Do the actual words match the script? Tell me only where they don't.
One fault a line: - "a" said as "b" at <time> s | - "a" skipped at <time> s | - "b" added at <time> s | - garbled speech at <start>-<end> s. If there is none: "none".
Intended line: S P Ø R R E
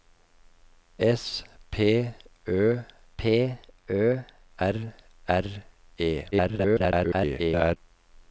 - "P Ø" added at 3.2 s
- garbled speech at 6.3-7.8 s